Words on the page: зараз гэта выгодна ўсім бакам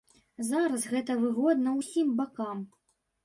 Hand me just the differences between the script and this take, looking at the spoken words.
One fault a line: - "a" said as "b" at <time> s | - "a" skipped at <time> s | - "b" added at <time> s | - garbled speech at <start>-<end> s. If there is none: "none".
none